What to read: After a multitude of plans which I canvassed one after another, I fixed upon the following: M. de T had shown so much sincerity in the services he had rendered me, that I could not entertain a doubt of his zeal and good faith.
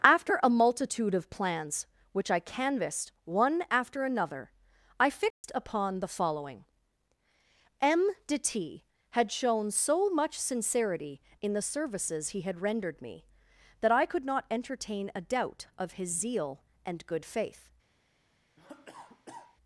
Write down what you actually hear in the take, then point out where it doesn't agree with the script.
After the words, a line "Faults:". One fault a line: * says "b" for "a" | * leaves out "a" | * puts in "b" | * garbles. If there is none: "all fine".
After a multitude of plans which I canvassed one after another, I fixed upon the following: M. de T had shown so much sincerity in the services he had rendered me, that I could not entertain a doubt of his zeal and good faith.
Faults:
all fine